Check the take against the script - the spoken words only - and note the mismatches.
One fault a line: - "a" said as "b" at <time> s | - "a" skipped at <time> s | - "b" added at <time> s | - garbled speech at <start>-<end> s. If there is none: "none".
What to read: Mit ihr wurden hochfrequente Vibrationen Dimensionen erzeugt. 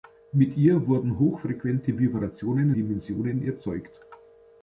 none